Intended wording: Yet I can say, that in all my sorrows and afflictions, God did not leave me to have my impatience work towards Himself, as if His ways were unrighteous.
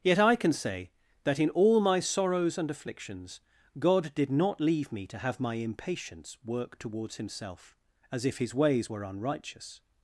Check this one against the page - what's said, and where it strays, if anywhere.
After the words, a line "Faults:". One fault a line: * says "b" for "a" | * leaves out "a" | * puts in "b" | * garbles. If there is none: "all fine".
Yet I can say, that in all my sorrows and afflictions, God did not leave me to have my impatience work towards Himself, as if His ways were unrighteous.
Faults:
all fine